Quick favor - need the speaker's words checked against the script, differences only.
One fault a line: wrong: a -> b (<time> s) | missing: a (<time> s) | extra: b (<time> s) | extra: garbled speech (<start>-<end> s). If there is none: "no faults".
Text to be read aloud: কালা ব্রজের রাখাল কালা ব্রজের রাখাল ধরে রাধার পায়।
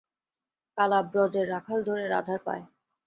missing: কালা ব্রজের রাখাল (1.8 s)